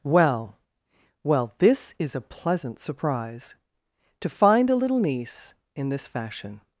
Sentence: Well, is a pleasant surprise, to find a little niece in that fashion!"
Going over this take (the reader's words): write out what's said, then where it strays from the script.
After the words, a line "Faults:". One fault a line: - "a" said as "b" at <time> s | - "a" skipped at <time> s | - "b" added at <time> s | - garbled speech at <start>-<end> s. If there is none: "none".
Well, well, this is a pleasant surprise, to find a little niece in this fashion!"
Faults:
- "well this" added at 1.2 s
- "that" said as "this" at 5.9 s